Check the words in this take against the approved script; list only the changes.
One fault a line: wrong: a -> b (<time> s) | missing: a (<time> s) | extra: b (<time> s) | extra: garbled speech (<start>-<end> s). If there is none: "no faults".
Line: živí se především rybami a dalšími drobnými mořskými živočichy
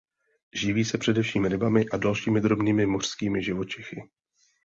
no faults